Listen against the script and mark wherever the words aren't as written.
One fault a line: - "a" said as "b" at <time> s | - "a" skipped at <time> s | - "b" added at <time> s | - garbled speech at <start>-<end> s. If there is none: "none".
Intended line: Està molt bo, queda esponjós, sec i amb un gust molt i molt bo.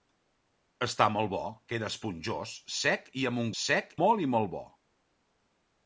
- "gust" said as "sec" at 3.6 s